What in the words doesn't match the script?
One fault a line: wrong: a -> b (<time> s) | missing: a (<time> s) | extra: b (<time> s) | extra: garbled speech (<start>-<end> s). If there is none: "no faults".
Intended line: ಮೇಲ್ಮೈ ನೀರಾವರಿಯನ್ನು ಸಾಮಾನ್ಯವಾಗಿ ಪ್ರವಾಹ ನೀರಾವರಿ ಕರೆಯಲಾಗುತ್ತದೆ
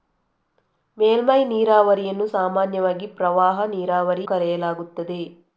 no faults